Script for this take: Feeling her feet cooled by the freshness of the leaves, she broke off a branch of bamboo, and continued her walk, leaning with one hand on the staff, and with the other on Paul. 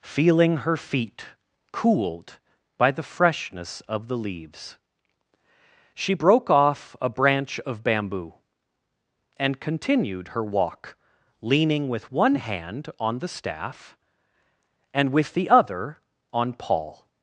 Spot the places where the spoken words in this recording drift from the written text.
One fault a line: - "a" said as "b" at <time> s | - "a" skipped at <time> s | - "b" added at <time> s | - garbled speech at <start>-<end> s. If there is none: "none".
none